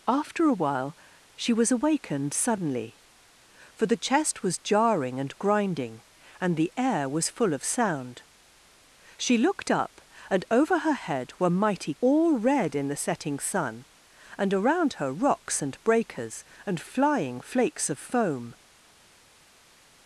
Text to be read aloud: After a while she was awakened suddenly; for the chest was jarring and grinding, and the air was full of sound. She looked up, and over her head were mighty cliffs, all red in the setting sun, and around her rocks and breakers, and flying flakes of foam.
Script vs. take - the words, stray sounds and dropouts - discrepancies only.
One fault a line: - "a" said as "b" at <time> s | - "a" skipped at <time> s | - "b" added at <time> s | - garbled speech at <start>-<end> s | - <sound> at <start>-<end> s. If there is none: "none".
- "cliffs" skipped at 11.9 s